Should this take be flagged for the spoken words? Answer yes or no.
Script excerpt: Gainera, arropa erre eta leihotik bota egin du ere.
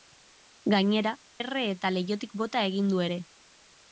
yes